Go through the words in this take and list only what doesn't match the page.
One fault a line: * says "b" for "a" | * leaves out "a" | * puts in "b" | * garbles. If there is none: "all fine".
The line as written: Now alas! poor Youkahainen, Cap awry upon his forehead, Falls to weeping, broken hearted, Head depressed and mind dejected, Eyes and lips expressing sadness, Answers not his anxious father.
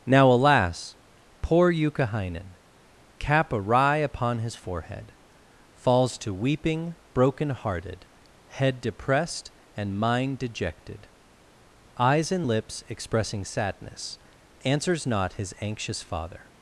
all fine